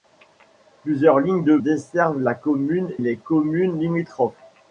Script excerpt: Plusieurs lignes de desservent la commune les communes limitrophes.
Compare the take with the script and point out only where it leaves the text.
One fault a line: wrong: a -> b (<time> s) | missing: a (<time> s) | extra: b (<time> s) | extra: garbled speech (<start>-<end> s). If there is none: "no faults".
no faults